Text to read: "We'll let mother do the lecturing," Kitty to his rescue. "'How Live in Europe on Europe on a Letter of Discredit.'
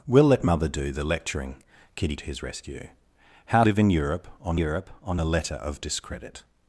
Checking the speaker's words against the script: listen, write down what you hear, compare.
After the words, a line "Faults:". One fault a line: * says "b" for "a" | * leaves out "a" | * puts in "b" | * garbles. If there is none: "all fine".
"We'll let mother do the lecturing," Kitty to his rescue. "'How Live in Europe on Europe on a Letter of Discredit.'
Faults:
all fine